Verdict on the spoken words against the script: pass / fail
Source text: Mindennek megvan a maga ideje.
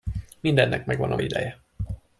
fail